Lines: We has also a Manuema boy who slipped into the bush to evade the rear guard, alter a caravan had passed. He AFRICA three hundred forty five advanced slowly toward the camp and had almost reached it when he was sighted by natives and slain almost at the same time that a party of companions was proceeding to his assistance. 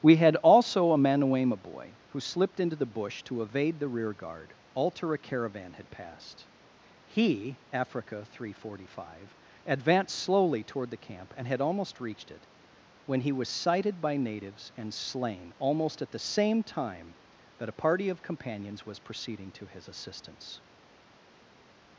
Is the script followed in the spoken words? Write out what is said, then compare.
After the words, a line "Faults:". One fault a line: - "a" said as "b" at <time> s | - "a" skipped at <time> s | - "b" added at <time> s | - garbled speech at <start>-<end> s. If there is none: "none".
We had also a Manuema boy who slipped into the bush to evade the rear guard, alter a caravan had passed. He AFRICA three hundred forty five advanced slowly toward the camp and had almost reached it when he was sighted by natives and slain almost at the same time that a party of companions was proceeding to his assistance.
Faults:
- "has" said as "had" at 0.1 s